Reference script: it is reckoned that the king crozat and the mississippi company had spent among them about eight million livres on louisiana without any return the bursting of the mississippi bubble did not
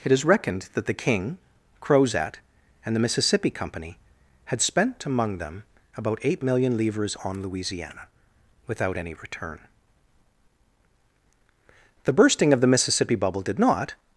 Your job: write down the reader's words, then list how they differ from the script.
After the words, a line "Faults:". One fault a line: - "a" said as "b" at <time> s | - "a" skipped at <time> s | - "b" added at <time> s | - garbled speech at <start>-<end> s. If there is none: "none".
it is reckoned that the king crozat and the mississippi company had spent among them about eight million livres on louisiana without any return the bursting of the mississippi bubble did not
Faults:
none